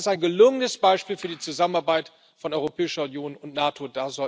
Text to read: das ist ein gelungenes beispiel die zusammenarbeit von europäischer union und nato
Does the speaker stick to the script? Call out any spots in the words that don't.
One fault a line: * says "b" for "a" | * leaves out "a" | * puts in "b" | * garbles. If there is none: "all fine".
* puts in "für"